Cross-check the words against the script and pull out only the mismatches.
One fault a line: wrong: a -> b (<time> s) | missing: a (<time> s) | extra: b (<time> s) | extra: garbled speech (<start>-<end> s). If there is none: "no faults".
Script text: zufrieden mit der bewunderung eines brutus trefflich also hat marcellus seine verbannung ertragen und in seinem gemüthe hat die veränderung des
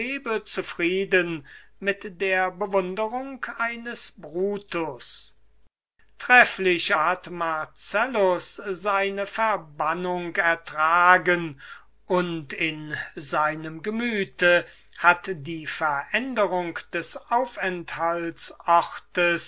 missing: also (6.9 s)